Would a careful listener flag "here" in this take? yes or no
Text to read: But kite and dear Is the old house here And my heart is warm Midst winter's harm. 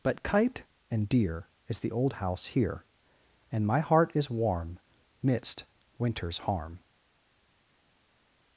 no